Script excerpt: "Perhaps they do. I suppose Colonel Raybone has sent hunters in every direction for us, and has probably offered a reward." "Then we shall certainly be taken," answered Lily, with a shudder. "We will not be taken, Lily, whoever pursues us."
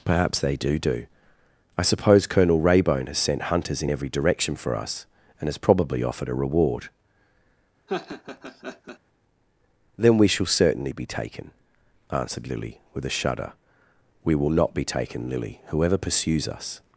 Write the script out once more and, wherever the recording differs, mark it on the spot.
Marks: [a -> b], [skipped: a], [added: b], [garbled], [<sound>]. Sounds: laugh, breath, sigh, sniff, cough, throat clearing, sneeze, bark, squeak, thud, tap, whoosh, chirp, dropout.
"Perhaps they do. [added: do] I suppose Colonel Raybone has sent hunters in every direction for us, and has probably offered a reward." [laugh] "Then we shall certainly be taken," answered Lily, with a shudder. "We will not be taken, Lily, whoever pursues us."